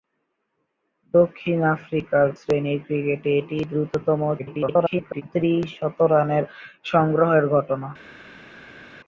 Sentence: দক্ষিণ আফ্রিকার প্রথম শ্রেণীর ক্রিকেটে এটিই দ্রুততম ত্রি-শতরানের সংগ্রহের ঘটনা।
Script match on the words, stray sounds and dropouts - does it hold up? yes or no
no